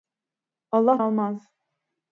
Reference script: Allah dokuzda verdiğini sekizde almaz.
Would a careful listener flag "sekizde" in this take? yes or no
yes